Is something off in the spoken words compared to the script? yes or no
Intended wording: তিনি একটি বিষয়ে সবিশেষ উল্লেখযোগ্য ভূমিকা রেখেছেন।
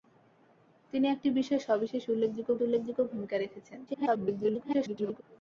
yes